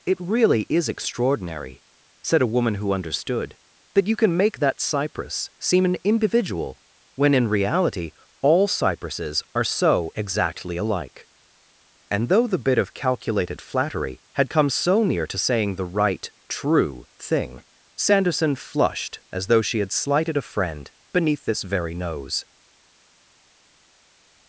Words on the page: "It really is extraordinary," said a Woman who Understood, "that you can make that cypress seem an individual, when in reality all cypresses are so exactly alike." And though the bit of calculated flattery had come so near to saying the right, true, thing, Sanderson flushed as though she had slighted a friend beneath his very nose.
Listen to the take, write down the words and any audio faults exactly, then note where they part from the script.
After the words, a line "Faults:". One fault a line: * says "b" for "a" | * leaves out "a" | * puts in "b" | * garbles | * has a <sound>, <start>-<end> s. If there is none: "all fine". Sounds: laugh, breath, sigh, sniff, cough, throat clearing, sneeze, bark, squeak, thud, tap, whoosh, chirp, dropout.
"It really is extraordinary," said a Woman who Understood, "that you can make that cypress seem an individual, when in reality all cypresses are so exactly alike." And though the bit of calculated flattery had come so near to saying the right, true, thing, Sanderson flushed as though she had slighted a friend beneath this very nose.
Faults:
* says "this" for "his"